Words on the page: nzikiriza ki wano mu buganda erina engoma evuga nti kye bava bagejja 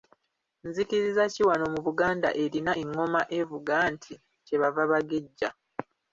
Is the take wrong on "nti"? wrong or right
right